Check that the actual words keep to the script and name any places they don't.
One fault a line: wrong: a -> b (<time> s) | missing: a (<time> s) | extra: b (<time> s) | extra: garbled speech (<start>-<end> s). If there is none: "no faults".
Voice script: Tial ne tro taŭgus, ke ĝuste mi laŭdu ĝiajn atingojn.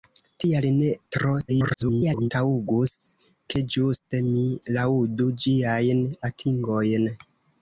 extra: garbled speech (1.5-2.3 s)